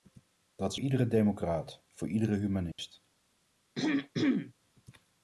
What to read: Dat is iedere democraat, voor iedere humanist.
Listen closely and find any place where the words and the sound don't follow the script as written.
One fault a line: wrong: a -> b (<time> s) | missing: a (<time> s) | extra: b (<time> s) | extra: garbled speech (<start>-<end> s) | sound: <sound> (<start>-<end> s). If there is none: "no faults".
sound: dropout (2.7-2.8 s)
sound: throat clearing (3.8-4.5 s)